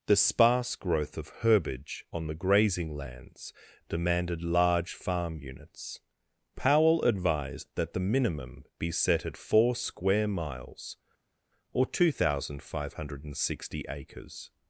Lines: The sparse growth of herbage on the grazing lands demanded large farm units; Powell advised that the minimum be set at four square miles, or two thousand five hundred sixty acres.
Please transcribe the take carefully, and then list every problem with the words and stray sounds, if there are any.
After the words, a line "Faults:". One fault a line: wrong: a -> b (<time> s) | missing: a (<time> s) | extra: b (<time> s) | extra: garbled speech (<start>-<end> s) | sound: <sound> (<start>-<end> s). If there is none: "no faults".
The sparse growth of herbage on the grazing lands demanded large farm units; Powell advised that the minimum be set at four square miles, or two thousand five hundred sixty acres.
Faults:
no faults